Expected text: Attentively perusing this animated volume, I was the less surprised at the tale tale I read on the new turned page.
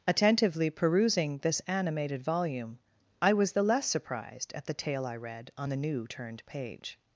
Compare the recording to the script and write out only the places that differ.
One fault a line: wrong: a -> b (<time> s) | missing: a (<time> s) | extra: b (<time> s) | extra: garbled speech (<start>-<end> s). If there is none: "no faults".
missing: tale (5.0 s)